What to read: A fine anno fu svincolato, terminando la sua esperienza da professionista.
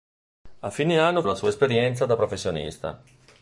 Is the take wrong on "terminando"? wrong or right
wrong